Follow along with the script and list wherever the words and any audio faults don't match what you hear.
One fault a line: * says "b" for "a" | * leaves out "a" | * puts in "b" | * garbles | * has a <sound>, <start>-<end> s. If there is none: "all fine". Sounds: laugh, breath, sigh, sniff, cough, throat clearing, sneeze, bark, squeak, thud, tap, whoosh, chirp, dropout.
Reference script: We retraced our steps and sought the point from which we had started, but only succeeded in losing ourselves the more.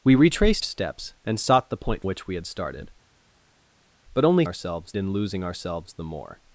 * leaves out "our"
* leaves out "from"
* says "ourselves" for "succeeded"